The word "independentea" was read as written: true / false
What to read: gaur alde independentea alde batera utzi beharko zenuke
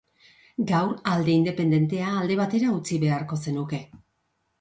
true